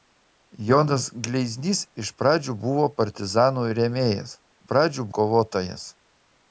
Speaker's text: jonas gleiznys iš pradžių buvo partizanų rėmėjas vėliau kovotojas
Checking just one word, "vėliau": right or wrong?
wrong